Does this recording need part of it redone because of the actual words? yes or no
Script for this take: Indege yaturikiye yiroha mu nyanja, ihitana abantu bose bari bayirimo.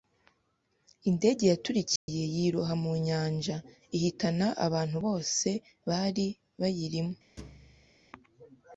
no